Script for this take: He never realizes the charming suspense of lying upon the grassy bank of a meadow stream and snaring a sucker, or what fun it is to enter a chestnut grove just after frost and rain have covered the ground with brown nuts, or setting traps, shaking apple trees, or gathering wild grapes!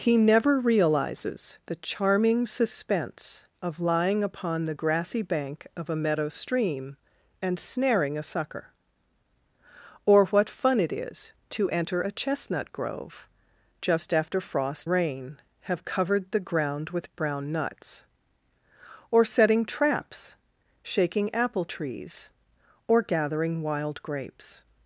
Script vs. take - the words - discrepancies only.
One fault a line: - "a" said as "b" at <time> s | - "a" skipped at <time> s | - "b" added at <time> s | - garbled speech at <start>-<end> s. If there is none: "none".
- "and" skipped at 14.9 s